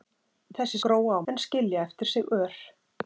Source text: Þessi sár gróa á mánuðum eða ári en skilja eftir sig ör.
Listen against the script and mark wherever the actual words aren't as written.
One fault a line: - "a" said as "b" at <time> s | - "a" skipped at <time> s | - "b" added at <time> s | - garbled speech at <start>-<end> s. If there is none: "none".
- "sár" skipped at 0.8 s
- "mánuðum eða ári" skipped at 1.3 s